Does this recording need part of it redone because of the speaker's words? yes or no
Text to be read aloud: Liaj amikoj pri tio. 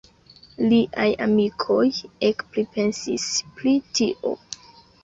yes